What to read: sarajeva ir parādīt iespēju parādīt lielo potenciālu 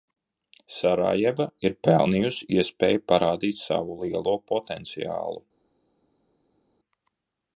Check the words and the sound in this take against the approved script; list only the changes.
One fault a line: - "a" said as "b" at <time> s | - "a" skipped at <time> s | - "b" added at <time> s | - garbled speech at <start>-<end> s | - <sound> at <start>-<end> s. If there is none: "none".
- "parādīt" said as "pelnījusi" at 1.9 s
- "savu" added at 3.6 s